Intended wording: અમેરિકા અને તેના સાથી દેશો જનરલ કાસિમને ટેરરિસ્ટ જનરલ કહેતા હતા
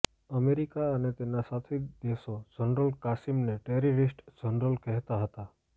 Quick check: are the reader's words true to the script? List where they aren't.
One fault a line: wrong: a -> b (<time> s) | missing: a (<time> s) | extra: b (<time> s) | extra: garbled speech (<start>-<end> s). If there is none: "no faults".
no faults